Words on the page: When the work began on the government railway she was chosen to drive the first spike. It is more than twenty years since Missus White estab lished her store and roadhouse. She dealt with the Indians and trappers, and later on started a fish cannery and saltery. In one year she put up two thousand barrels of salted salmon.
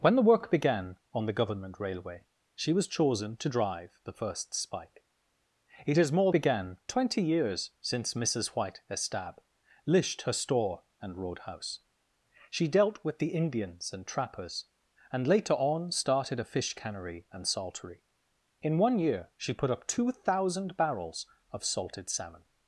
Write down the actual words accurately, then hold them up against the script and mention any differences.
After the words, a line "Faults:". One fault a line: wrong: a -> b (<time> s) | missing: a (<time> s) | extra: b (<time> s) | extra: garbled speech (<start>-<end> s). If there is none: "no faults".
When the work began on the government railway she was chosen to drive the first spike. It is more began twenty years since Missus White estab lished her store and roadhouse. She dealt with the Indians and trappers, and later on started a fish cannery and saltery. In one year she put up two thousand barrels of salted salmon.
Faults:
wrong: than -> began (6.3 s)